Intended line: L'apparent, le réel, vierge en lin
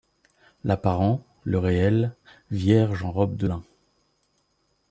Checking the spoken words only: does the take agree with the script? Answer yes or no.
no